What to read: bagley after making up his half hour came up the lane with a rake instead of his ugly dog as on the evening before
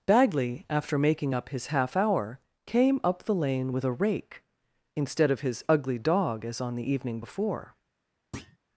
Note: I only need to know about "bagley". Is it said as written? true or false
true